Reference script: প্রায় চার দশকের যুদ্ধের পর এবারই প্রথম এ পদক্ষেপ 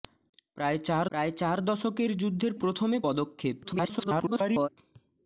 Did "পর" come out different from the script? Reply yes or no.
yes